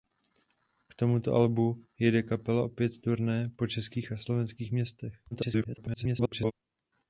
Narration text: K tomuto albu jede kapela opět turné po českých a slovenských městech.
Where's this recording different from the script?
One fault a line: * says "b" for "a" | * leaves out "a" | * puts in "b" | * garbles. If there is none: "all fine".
* garbles